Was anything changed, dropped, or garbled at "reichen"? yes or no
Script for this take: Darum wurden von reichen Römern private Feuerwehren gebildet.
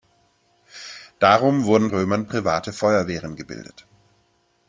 yes